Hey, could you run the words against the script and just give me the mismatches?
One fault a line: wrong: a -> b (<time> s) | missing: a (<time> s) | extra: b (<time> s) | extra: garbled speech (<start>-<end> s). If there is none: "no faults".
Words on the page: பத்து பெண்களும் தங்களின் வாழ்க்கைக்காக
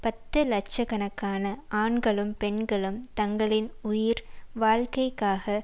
extra: லட்ச கணக்கான ஆண்களும் (0.4 s)
extra: உயிர் (3.8 s)